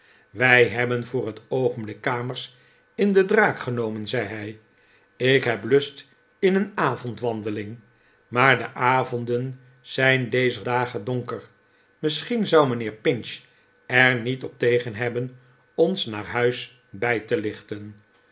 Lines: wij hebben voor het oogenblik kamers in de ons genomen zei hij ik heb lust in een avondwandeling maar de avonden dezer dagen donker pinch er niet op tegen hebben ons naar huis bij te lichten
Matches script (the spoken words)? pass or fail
fail